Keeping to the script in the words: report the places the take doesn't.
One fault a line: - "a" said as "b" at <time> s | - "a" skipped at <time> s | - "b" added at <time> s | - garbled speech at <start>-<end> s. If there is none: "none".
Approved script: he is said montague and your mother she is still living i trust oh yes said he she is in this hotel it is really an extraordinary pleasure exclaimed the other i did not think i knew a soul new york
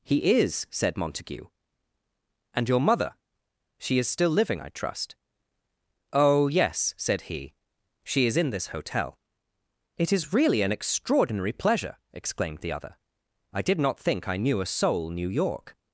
none